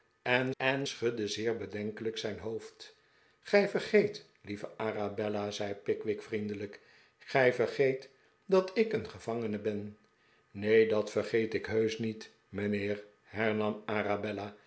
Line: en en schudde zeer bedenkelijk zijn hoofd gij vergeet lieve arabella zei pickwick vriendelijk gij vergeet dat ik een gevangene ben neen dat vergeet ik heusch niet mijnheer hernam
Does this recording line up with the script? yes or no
yes